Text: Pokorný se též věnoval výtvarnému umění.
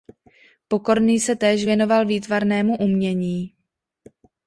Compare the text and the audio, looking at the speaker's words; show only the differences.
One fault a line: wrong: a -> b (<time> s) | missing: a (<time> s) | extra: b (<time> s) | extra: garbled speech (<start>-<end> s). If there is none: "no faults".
no faults